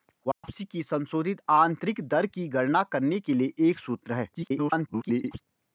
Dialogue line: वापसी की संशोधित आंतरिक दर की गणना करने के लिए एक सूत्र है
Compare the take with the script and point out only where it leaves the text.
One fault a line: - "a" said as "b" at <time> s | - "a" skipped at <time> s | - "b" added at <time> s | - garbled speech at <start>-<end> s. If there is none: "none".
- garbled speech at 4.3-5.4 s